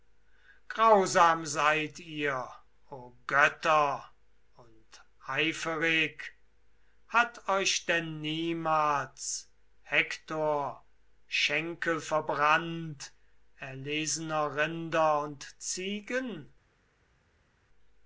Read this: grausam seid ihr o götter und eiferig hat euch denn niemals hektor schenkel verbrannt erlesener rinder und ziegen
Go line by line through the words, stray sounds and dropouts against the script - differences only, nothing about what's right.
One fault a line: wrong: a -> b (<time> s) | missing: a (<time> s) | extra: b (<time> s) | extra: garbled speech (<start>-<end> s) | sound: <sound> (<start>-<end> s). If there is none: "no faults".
no faults